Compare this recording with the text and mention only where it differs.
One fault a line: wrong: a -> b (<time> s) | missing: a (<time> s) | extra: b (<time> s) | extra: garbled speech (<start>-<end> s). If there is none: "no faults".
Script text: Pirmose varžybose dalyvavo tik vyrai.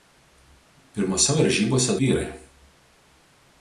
missing: dalyvavo tik (2.0 s)